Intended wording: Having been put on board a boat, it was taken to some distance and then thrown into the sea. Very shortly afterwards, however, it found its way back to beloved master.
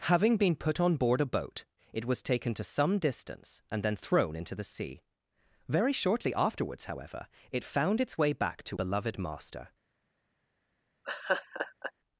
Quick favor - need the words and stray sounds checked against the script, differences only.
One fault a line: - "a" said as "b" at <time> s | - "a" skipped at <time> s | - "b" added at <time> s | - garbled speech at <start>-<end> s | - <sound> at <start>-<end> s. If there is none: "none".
- laugh at 11.0-11.9 s